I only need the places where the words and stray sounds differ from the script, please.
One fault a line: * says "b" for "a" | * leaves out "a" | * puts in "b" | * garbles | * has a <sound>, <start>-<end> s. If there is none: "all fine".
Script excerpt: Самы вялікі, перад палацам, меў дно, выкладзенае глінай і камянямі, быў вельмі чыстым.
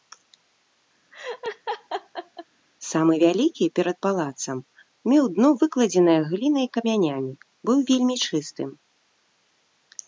* has a laugh, 1.1-2.5 s